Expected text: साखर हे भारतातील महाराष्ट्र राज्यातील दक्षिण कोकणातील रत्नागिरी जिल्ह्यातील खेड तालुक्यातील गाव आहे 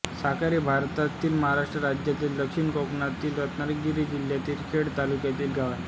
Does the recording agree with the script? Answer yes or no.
yes